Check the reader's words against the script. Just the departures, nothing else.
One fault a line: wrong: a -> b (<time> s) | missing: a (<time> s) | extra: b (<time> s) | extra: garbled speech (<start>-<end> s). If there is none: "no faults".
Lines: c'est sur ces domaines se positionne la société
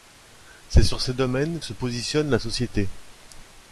no faults